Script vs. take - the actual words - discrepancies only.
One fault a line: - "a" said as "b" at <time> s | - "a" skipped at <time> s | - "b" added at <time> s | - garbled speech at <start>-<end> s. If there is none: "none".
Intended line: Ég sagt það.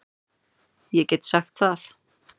- "get" added at 1.1 s